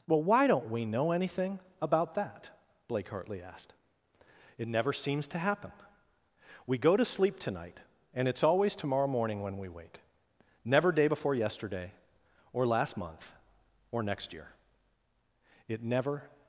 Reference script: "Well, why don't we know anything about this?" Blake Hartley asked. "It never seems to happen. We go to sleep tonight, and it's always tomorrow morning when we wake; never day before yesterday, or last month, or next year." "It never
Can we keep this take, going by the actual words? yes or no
no